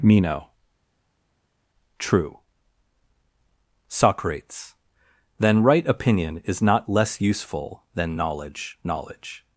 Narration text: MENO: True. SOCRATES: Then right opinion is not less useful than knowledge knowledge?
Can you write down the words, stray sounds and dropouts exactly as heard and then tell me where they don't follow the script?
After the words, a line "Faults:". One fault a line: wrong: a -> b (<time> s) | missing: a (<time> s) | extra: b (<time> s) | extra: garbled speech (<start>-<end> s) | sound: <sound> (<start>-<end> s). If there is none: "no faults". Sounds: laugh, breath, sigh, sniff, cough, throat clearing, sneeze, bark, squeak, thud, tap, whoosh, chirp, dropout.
MENO: True. SOCRATES: Then right opinion is not less useful than knowledge knowledge?
Faults:
no faults